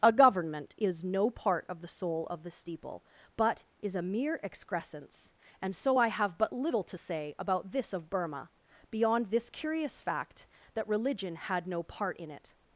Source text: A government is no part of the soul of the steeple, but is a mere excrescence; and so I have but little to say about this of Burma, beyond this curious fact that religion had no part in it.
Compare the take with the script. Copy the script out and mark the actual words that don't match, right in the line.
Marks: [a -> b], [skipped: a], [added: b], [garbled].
A government is no part of the soul of the steeple, but is a mere excrescence; and so I have but little to say about this of Burma, beyond this curious fact that religion had no part in it.